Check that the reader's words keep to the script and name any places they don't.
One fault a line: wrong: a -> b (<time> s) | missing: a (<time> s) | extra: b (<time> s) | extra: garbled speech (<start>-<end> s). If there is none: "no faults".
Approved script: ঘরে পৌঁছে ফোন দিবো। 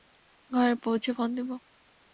no faults